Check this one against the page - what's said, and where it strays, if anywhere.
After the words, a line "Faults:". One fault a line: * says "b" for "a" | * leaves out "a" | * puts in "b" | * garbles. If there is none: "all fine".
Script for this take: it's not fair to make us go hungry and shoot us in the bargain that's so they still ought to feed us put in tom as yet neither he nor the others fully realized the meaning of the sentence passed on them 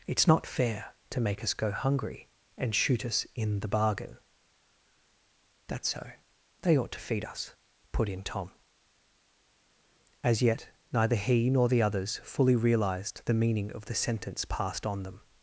it's not fair to make us go hungry and shoot us in the bargain that's so they ought to feed us put in tom as yet neither he nor the others fully realized the meaning of the sentence passed on them
Faults:
* leaves out "still"